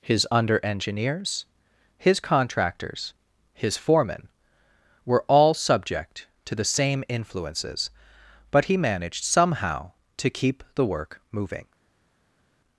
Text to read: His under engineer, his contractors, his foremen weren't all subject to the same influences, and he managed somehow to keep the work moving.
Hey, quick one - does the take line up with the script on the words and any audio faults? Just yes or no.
no